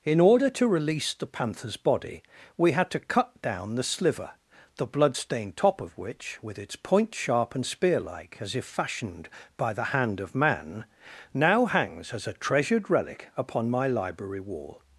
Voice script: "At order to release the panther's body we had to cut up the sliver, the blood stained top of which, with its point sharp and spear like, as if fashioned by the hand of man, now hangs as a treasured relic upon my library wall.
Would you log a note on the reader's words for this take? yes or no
yes